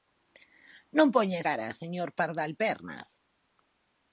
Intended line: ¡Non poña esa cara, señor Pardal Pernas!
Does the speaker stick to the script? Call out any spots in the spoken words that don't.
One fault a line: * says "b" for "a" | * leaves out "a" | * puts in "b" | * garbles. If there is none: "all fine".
* leaves out "esa"